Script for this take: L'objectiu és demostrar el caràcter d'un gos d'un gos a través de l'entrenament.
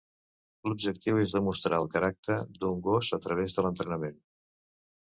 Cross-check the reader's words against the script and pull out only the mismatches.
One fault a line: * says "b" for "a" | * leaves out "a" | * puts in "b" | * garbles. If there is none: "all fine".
* leaves out "d'un gos"